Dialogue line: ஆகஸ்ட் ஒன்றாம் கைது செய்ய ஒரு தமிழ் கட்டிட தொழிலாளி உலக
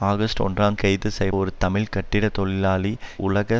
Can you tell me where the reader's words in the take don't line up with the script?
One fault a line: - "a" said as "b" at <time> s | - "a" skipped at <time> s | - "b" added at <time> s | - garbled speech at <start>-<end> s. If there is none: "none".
none